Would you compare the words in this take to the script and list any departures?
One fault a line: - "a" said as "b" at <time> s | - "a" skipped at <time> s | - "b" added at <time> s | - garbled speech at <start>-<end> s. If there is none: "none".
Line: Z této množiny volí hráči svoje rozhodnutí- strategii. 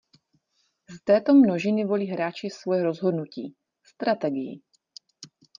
none